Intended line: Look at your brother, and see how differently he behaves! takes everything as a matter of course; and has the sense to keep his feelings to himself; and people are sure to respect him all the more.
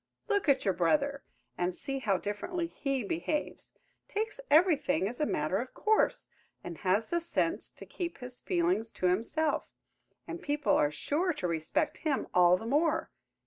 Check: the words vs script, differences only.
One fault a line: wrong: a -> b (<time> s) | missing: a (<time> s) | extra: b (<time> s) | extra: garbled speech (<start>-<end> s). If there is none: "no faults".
no faults